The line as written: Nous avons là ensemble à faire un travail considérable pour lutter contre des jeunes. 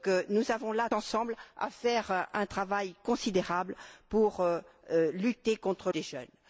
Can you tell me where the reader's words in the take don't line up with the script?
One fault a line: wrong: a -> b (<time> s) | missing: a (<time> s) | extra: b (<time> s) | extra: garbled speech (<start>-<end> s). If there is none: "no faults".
no faults